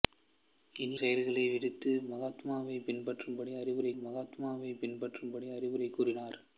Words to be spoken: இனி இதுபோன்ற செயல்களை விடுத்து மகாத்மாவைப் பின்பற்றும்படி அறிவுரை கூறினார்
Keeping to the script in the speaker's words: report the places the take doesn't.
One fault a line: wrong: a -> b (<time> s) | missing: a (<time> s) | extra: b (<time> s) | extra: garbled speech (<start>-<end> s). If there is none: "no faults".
missing: இதுபோன்ற (1.0 s)
extra: மகாத்மாவைப் பின்பற்றும்படி அறிவுரை (4.0 s)